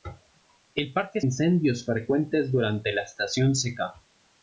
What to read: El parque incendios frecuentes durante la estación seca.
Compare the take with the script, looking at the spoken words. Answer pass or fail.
pass